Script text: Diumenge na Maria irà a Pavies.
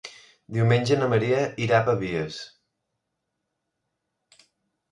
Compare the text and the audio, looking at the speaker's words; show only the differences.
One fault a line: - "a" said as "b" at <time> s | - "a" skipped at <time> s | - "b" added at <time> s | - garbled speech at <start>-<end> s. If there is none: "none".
none